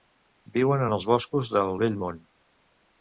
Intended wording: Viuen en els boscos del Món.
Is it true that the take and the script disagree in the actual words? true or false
true